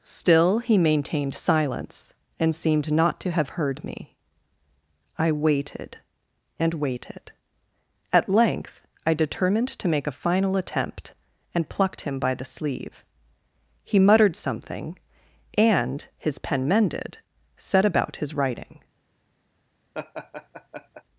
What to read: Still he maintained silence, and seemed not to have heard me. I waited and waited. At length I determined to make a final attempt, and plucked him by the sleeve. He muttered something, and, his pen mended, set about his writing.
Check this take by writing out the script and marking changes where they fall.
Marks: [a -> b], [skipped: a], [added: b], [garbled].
Still he maintained silence, and seemed not to have heard me. I waited and waited. At length I determined to make a final attempt, and plucked him by the sleeve. He muttered something, and, his pen mended, set about his writing.